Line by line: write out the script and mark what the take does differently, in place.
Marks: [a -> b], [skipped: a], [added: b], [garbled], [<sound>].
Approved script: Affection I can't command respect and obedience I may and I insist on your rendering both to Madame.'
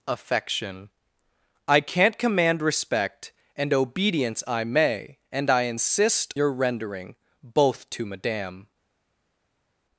Affection I can't command respect and obedience I may and I insist [skipped: on] your rendering both to Madame.'